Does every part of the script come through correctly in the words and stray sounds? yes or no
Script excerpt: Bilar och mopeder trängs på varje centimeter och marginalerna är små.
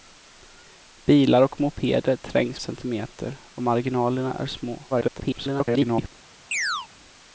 no